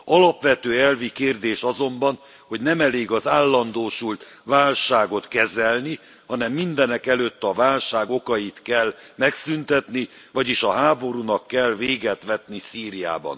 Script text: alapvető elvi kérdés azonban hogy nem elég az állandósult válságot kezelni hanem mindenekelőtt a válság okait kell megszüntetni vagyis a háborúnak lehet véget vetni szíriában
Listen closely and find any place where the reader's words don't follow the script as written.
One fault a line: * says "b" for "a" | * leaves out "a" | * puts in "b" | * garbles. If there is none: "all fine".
* says "kell" for "lehet"